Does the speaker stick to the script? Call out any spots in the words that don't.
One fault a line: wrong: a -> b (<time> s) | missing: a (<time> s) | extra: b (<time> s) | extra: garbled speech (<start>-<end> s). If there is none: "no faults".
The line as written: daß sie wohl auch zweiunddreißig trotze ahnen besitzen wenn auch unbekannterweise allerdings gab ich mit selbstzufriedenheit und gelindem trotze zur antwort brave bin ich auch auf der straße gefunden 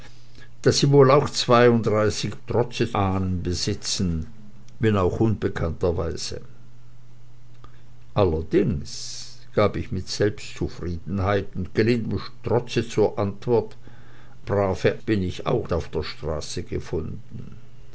no faults